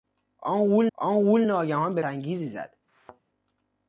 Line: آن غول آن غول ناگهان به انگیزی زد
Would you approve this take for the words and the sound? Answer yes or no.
no